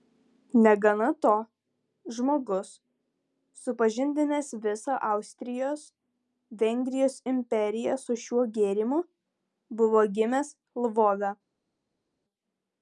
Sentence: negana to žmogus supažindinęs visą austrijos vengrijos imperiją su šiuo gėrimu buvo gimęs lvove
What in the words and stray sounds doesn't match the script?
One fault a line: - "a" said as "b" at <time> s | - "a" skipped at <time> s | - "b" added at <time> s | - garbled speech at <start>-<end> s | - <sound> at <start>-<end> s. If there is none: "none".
none